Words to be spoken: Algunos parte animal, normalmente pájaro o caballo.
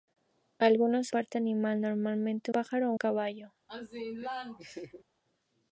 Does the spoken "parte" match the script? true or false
true